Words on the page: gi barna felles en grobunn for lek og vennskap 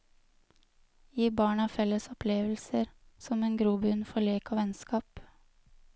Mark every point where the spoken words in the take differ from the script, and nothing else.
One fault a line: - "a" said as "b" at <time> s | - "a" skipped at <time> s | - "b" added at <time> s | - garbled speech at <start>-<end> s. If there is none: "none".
- "opplevelser som" added at 2.1 s